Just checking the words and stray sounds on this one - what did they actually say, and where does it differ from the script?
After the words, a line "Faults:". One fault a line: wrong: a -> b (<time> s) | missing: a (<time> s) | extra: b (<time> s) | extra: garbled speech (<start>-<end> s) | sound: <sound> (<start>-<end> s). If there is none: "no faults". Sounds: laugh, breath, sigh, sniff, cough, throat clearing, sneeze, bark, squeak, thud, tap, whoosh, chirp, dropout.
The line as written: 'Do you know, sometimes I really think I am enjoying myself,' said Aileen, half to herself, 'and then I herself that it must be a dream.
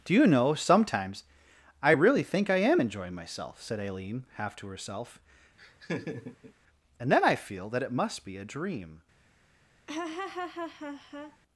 'Do you know, sometimes I really think I am enjoying myself,' said Aileen, half to herself, 'and then I feel that it must be a dream.
Faults:
sound: laugh (5.6-6.5 s)
wrong: herself -> feel (7.3 s)
sound: laugh (9.9-11.4 s)